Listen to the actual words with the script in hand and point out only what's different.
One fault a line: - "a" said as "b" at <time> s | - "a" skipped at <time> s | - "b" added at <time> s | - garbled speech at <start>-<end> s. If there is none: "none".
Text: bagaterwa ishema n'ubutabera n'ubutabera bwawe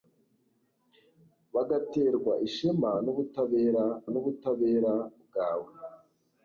none